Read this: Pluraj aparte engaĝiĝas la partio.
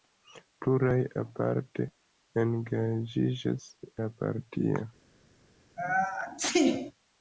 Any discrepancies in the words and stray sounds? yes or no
yes